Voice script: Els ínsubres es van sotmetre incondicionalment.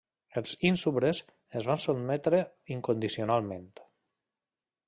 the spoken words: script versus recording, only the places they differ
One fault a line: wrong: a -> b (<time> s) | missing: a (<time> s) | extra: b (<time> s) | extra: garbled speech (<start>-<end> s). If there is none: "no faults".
no faults